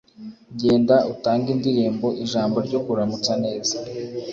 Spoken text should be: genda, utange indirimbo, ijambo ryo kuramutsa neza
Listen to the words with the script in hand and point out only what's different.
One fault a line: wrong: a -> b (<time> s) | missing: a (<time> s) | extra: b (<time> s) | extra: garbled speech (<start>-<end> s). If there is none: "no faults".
no faults